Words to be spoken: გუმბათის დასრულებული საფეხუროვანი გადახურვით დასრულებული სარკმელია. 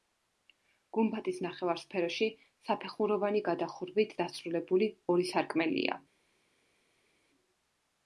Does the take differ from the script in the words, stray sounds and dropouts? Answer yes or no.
yes